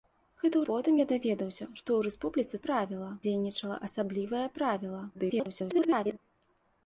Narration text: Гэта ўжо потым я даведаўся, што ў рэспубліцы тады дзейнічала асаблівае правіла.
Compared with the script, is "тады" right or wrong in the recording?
wrong